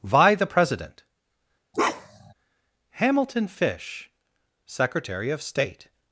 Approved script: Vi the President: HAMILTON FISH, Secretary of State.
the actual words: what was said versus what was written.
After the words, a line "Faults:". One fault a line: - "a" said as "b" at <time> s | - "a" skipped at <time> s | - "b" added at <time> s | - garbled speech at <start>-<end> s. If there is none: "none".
Vi the President: HAMILTON FISH, Secretary of State.
Faults:
none